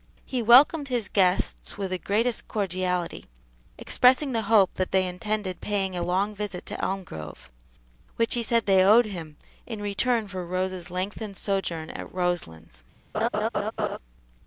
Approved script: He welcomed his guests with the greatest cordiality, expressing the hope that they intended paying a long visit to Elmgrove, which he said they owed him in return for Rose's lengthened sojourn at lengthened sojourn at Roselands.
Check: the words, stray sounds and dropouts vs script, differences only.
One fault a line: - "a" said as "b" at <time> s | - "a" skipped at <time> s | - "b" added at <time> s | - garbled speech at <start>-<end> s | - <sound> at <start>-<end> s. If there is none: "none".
- "lengthened sojourn at" skipped at 12.1 s
- laugh at 13.1-14.0 s